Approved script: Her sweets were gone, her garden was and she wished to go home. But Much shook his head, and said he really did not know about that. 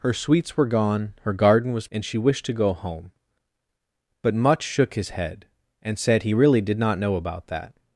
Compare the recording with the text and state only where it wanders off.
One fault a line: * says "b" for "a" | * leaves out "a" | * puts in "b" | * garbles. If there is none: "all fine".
all fine